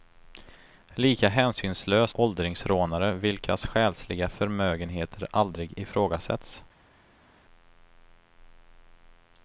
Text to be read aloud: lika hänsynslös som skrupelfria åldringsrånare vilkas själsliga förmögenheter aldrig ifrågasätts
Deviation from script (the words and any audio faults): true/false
true